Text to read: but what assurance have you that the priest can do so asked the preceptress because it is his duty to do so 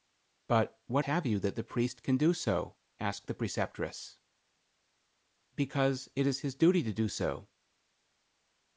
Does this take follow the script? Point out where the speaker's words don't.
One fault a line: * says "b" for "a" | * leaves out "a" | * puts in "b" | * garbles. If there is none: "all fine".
* leaves out "assurance"